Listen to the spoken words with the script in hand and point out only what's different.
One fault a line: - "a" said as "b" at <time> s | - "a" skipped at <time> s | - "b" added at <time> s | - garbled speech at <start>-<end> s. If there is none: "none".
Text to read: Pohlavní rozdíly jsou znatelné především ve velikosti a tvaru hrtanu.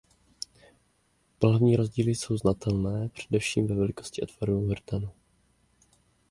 none